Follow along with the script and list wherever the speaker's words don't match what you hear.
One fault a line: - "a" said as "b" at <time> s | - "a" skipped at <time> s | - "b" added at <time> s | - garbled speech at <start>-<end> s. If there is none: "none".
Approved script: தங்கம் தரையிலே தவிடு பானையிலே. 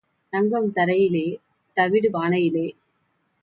none